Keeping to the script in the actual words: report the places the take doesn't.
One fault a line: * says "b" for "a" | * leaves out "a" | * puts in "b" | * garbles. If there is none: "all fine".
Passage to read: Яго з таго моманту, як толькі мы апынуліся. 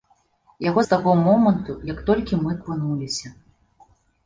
all fine